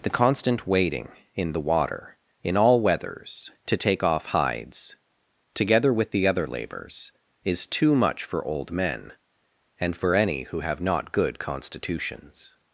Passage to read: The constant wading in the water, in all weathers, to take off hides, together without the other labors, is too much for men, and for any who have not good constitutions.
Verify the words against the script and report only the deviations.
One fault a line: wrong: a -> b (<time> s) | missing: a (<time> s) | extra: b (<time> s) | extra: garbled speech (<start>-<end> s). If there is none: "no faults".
wrong: without -> with (5.9 s)
extra: old (8.4 s)